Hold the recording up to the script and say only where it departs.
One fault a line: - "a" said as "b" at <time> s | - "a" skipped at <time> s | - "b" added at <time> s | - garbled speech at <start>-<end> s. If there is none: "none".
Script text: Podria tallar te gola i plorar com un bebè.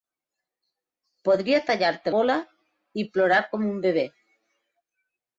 none